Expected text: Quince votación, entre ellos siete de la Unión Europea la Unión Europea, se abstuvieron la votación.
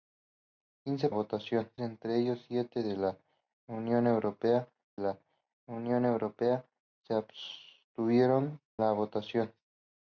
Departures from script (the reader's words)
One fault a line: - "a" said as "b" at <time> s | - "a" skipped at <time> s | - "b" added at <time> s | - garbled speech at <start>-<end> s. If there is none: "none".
none